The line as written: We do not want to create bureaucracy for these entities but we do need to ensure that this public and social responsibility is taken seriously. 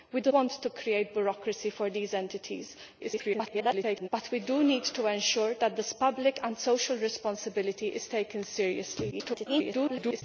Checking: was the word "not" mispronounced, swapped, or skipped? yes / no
yes